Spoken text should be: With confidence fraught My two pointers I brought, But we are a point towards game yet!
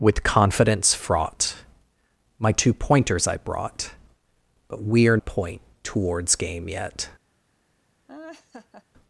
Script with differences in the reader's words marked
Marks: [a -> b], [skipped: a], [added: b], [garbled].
With confidence fraught My two pointers I brought, But we are a point towards game yet!